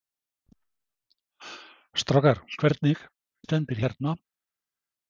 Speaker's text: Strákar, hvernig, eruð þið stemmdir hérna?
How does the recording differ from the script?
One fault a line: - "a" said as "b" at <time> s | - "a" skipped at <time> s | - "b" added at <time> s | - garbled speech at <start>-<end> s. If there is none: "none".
- "eruð" skipped at 3.0 s